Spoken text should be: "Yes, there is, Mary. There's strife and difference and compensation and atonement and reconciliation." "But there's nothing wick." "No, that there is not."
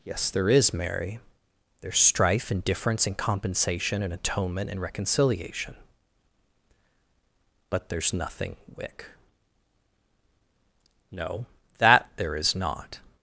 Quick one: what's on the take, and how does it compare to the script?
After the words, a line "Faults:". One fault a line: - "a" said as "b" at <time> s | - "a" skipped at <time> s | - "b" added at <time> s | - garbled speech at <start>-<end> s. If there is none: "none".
"Yes, there is, Mary. There's strife and difference and compensation and atonement and reconciliation." "But there's nothing wick." "No, that there is not."
Faults:
none